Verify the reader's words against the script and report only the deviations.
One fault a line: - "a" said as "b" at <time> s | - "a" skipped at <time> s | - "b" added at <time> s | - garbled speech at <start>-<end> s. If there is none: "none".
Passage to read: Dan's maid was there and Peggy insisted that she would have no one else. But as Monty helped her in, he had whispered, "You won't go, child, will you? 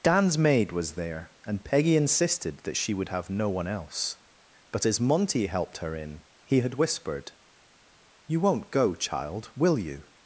none